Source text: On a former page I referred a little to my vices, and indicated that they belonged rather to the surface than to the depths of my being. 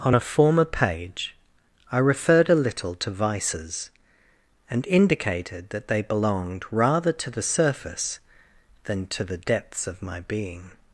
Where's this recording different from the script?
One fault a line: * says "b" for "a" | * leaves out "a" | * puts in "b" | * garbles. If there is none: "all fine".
* leaves out "my"